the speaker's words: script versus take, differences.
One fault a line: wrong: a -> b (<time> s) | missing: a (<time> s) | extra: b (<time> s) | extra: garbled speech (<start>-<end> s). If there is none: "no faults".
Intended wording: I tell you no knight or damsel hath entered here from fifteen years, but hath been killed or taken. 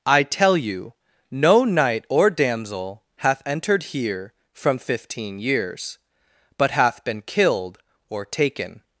no faults